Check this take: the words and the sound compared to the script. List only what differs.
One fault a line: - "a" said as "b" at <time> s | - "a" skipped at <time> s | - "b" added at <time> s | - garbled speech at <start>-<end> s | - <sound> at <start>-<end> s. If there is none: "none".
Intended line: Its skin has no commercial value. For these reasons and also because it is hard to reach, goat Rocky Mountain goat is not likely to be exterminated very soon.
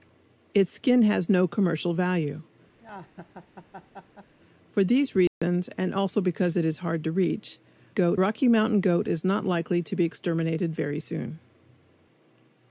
- laugh at 2.8-4.3 s
- dropout at 5.3-5.4 s